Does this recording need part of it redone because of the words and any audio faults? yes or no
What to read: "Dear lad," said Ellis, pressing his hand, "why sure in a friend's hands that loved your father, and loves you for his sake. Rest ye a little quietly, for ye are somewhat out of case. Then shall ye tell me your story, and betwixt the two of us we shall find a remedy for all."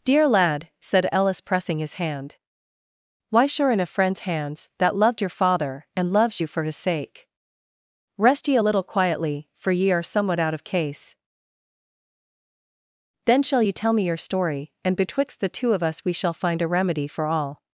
no